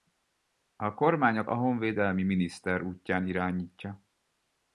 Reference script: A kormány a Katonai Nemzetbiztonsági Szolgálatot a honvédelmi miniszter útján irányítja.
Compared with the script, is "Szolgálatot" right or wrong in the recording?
wrong